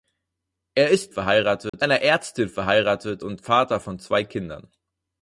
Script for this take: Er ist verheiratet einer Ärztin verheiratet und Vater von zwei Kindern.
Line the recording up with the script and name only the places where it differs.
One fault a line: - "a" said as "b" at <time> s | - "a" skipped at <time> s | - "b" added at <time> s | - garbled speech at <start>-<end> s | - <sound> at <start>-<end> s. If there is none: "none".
- dropout at 1.7-1.7 s